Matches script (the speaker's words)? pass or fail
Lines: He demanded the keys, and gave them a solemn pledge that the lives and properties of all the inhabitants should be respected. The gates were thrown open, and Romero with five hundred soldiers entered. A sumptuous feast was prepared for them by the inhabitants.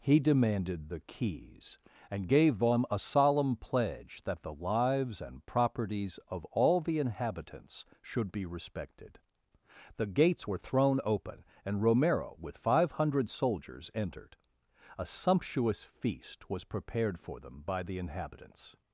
pass